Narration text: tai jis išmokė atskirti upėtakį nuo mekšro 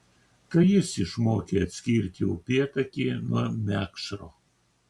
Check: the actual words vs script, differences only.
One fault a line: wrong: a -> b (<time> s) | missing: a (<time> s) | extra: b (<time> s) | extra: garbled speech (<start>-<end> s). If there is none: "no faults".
no faults